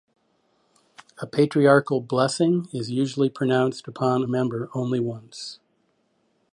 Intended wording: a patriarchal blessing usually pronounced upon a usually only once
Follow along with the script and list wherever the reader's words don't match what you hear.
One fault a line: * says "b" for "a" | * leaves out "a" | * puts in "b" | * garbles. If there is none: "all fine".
* puts in "is"
* says "member" for "usually"